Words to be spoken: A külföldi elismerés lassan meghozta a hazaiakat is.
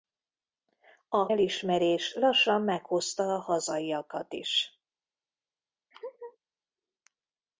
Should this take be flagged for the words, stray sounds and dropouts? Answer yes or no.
yes